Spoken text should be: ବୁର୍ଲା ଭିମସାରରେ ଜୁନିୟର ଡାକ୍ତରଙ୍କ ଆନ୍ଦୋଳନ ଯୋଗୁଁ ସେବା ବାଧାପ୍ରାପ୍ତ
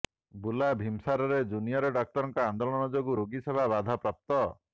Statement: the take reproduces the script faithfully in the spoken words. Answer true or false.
false